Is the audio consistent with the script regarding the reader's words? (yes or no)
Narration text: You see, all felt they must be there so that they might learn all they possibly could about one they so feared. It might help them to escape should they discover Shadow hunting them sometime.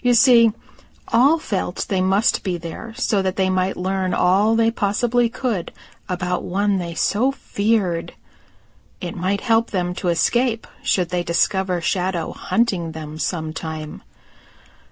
yes